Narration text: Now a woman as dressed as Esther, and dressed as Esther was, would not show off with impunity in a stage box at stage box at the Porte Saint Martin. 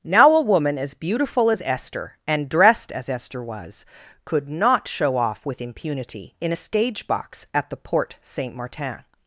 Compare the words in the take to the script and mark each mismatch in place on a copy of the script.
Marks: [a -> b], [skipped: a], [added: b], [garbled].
Now a woman as [dressed -> beautiful] as Esther, and dressed as Esther was, [would -> could] not show off with impunity in a stage box at [skipped: stage box at] the Porte Saint Martin.